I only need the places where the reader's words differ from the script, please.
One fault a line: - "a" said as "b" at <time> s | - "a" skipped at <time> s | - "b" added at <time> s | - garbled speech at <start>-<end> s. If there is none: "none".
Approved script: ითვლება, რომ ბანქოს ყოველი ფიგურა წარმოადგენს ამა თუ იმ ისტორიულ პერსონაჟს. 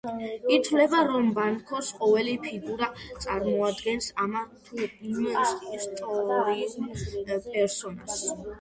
none